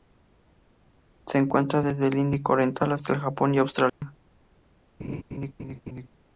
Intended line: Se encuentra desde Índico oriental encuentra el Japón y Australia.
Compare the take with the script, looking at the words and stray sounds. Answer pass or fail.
fail